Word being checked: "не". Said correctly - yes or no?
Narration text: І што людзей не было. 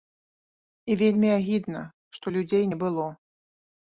yes